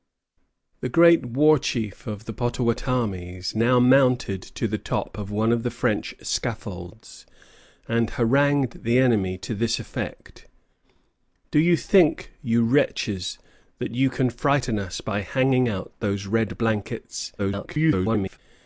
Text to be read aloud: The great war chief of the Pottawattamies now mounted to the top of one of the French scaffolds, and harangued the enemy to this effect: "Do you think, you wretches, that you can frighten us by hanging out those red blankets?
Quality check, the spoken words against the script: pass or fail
fail